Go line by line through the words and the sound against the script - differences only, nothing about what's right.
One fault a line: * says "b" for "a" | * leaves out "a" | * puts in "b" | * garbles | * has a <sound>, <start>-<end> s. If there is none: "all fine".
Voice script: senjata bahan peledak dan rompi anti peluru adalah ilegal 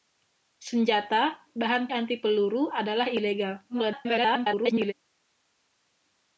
* leaves out "peledak dan rompi"
* garbles